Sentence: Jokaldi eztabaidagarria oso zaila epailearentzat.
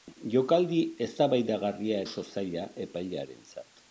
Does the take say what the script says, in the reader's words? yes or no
yes